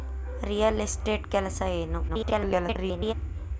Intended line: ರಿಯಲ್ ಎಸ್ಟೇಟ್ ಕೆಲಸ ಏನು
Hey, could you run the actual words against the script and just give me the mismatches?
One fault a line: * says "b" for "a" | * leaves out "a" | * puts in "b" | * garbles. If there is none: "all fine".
* garbles